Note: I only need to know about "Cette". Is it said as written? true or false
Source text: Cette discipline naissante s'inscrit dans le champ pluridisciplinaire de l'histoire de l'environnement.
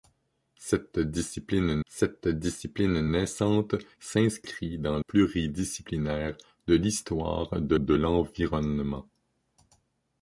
true